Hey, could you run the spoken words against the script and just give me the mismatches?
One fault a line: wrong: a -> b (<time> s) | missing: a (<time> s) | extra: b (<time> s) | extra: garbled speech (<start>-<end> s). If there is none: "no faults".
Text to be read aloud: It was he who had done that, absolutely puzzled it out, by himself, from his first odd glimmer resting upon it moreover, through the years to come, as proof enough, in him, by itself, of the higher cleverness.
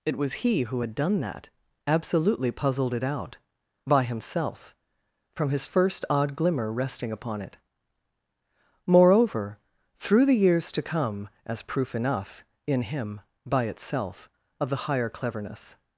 no faults